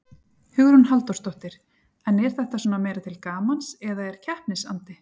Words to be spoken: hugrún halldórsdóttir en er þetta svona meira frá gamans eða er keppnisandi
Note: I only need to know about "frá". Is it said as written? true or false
false